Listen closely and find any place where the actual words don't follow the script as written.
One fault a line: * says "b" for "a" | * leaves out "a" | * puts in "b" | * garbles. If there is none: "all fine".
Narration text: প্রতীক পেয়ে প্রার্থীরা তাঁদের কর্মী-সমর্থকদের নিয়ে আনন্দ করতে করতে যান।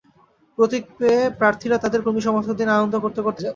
all fine